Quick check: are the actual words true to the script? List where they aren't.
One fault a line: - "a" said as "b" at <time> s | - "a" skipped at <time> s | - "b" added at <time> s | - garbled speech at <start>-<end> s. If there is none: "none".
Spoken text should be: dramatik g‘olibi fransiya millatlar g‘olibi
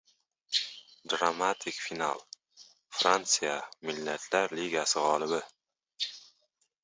- "g‘olibi" said as "final" at 1.9 s
- "ligasi" added at 4.6 s